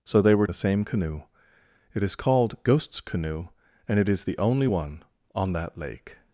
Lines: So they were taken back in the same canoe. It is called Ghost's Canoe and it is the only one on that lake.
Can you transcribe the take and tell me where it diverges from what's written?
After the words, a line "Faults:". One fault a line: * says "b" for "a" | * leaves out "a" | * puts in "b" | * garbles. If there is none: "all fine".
So they were the same canoe. It is called Ghost's Canoe and it is the only one on that lake.
Faults:
* leaves out "taken back in"